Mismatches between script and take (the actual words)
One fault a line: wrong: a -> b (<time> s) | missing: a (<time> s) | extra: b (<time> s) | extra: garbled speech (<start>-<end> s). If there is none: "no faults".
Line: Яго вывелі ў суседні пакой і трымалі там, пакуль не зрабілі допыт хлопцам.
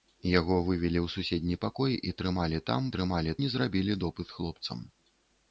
wrong: пакуль -> трымалі (3.0 s)